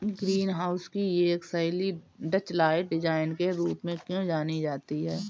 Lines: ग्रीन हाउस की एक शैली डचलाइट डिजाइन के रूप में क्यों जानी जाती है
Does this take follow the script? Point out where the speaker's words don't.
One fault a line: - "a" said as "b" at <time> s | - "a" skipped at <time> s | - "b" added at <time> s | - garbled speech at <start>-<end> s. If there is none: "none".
none